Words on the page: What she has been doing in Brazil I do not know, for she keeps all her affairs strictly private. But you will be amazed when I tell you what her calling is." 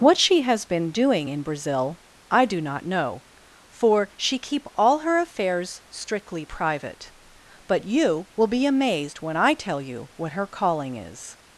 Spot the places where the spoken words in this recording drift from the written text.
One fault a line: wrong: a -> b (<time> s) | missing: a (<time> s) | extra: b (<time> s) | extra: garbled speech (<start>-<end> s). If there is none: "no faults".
wrong: keeps -> keep (4.4 s)